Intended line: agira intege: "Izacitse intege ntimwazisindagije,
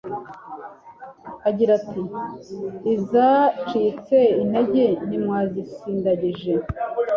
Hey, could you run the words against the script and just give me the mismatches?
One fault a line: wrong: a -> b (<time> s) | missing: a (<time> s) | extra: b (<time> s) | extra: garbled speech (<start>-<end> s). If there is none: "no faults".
wrong: intege -> ati (1.8 s)